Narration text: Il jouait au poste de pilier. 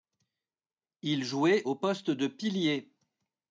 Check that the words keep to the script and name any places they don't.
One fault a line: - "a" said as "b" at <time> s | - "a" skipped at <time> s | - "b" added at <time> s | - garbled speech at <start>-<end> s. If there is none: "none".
none